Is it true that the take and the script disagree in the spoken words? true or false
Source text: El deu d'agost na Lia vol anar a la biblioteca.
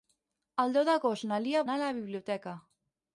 true